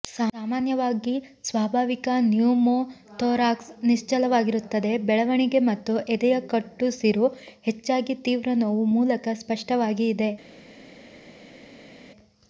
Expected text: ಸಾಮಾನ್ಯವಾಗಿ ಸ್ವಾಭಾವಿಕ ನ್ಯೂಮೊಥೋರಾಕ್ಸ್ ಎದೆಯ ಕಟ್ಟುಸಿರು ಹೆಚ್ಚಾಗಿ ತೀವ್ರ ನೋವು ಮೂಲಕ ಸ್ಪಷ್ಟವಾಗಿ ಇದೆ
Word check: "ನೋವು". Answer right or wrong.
right